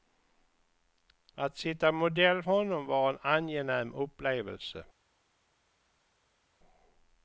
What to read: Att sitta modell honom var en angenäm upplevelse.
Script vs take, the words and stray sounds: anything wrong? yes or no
no